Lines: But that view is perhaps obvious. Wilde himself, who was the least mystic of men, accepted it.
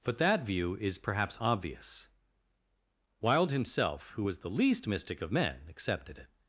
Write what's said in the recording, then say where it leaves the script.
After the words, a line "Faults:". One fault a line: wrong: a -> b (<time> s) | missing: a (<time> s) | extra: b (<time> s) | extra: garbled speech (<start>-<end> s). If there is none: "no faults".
But that view is perhaps obvious. Wilde himself, who was the least mystic of men, accepted it.
Faults:
no faults